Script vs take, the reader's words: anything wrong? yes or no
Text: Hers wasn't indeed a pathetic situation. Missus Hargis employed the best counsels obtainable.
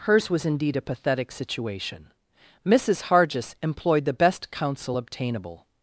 yes